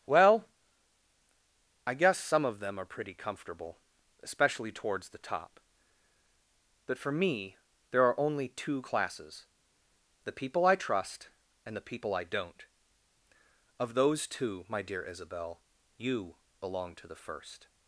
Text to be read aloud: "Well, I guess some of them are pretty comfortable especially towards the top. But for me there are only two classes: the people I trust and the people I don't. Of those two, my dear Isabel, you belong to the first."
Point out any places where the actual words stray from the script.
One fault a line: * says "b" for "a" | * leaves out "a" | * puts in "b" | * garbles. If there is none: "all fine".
all fine